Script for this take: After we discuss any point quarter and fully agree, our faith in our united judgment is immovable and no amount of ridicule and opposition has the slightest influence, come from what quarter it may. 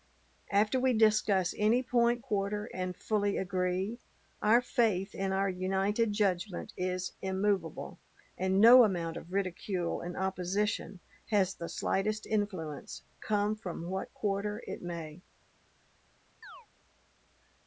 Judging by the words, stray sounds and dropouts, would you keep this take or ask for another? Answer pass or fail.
fail